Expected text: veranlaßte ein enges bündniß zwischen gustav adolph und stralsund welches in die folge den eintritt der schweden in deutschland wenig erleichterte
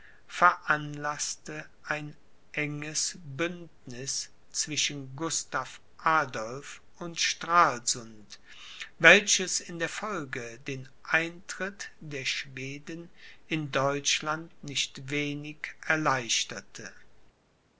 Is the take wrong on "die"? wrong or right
wrong